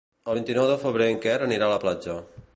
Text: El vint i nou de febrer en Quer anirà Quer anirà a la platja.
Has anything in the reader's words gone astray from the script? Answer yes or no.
yes